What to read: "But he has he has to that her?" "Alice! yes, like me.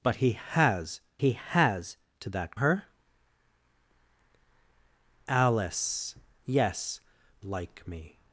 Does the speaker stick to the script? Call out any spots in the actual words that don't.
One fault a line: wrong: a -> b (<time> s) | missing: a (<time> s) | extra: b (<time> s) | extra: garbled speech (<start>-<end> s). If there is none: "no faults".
no faults